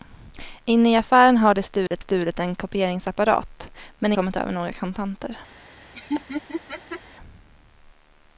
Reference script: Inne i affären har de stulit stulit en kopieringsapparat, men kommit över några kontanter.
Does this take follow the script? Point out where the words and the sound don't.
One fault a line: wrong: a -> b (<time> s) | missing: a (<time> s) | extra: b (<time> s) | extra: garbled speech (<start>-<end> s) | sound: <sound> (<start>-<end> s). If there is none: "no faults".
sound: dropout (1.9-1.9 s)
sound: laugh (5.9-7.0 s)